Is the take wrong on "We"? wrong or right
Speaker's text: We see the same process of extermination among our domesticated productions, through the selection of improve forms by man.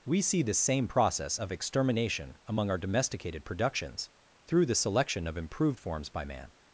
right